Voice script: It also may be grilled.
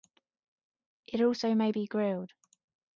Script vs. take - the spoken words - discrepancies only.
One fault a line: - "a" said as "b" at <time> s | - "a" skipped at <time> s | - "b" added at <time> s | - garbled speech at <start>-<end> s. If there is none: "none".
none